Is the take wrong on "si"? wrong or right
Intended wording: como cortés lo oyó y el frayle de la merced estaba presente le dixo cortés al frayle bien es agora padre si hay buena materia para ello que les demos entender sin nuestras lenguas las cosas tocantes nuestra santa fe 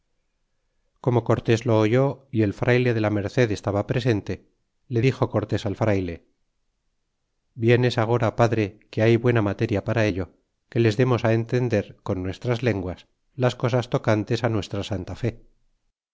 wrong